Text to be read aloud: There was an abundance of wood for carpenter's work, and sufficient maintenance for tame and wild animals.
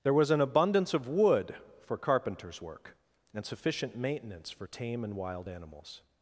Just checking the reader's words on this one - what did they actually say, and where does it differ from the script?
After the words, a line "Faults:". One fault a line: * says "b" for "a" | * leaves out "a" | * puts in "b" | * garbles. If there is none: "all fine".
There was an abundance of wood for carpenter's work, and sufficient maintenance for tame and wild animals.
Faults:
all fine